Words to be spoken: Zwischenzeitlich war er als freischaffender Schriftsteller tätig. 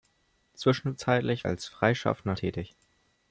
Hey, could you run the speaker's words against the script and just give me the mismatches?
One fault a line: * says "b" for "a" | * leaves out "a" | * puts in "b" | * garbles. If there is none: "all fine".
* leaves out "war"
* leaves out "Schriftsteller"